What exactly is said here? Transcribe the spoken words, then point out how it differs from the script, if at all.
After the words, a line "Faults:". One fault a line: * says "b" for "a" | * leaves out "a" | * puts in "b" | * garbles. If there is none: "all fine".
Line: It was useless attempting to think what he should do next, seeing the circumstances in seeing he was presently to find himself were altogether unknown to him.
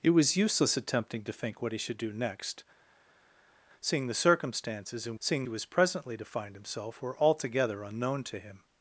It was useless attempting to think what he should do next, seeing the circumstances in seeing he was presently to find himself were altogether unknown to him.
Faults:
all fine